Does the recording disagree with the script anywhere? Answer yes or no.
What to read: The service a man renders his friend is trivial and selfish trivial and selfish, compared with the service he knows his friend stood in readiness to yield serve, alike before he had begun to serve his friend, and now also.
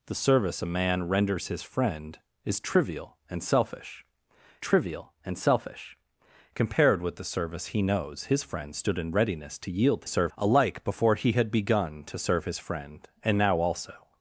no